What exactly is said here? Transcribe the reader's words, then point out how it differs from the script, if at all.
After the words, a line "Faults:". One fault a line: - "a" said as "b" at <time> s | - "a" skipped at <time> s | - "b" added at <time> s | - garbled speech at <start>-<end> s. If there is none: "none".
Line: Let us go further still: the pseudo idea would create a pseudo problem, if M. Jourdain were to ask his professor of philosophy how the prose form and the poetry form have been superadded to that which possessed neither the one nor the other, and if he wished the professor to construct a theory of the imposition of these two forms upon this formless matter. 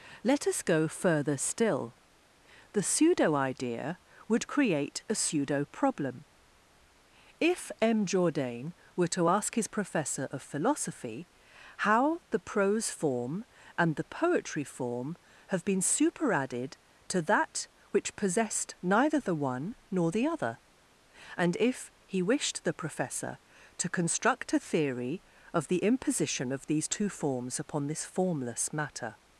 Let us go further still: the pseudo idea would create a pseudo problem, if M. Jourdain were to ask his professor of philosophy how the prose form and the poetry form have been superadded to that which possessed neither the one nor the other, and if he wished the professor to construct a theory of the imposition of these two forms upon this formless matter.
Faults:
none